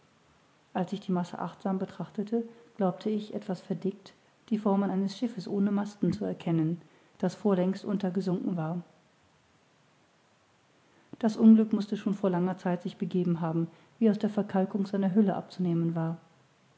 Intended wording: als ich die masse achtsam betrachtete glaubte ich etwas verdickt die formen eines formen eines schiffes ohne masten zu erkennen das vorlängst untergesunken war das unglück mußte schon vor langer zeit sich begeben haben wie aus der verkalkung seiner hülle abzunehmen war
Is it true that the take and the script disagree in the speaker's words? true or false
true